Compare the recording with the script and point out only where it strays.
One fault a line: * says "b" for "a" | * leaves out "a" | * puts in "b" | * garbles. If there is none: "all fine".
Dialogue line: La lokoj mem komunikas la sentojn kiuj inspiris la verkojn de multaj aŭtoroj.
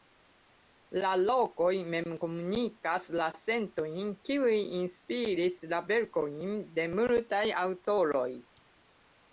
all fine